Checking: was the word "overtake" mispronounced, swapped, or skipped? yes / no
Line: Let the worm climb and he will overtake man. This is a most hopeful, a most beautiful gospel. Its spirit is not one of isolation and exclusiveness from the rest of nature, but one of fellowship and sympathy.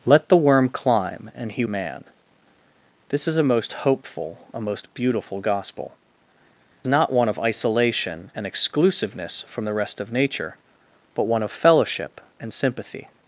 yes